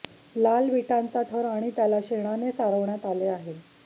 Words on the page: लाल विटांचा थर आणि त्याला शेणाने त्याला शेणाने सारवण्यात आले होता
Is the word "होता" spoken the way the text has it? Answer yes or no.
no